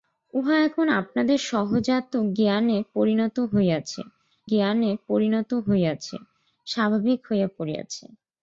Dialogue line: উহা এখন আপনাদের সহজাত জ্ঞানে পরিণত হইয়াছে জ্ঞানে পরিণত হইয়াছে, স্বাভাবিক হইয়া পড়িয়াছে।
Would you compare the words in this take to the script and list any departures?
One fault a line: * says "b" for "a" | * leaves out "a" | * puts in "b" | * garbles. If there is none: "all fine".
all fine